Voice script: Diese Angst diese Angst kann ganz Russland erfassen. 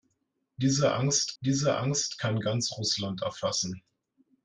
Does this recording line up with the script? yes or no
yes